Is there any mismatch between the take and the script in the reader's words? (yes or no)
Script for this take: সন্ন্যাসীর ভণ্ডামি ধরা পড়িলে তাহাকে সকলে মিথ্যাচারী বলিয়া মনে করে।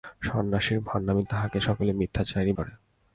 yes